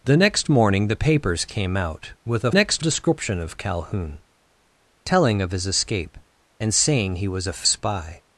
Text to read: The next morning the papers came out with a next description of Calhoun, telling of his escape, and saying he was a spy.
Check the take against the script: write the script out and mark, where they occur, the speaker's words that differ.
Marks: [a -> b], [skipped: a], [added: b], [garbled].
The next morning the papers came out with a next description of Calhoun, telling of his escape, and saying he was a spy.